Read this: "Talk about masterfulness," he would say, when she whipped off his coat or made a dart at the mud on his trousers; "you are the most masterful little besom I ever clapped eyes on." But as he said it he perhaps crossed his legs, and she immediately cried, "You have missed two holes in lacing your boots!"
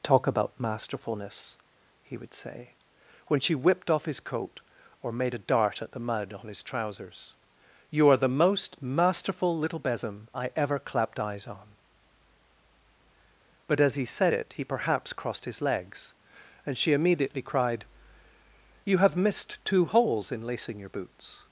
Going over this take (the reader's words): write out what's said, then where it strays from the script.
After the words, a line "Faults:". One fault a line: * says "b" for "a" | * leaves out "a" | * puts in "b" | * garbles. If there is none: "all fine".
"Talk about masterfulness," he would say, when she whipped off his coat or made a dart at the mud on his trousers; "you are the most masterful little besom I ever clapped eyes on." But as he said it he perhaps crossed his legs, and she immediately cried, "You have missed two holes in lacing your boots!"
Faults:
all fine